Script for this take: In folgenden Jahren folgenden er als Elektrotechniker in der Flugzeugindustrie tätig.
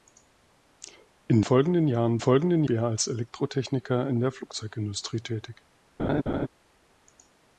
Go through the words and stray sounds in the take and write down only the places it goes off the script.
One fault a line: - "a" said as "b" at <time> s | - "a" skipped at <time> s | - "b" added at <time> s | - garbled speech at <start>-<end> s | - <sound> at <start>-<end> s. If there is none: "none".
- laugh at 6.0-6.5 s